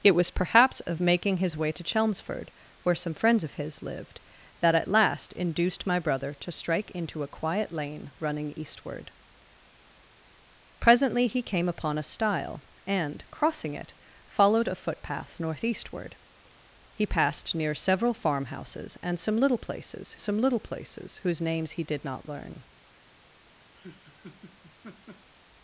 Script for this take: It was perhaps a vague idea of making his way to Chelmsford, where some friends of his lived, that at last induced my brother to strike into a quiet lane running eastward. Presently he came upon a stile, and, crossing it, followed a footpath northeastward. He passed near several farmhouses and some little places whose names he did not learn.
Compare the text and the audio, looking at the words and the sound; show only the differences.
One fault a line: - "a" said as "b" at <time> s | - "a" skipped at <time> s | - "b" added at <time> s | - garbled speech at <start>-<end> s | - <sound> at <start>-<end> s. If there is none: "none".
- "vague idea of" skipped at 0.9 s
- "some little places" added at 20.2 s
- laugh at 23.8-25.3 s